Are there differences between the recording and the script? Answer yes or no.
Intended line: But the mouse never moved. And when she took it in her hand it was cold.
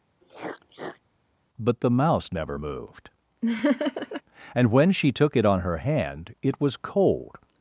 yes